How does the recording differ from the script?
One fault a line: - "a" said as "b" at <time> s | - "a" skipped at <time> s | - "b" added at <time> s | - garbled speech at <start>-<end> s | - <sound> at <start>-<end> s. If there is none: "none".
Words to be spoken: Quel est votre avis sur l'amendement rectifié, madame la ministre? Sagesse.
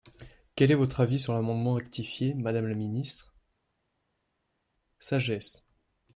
none